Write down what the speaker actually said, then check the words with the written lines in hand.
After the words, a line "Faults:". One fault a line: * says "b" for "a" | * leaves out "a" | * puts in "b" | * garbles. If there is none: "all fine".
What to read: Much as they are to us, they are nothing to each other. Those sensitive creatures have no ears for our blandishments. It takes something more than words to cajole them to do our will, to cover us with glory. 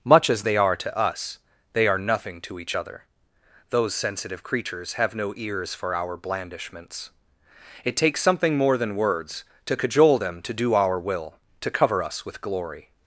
Much as they are to us, they are nothing to each other. Those sensitive creatures have no ears for our blandishments. It takes something more than words to cajole them to do our will, to cover us with glory.
Faults:
all fine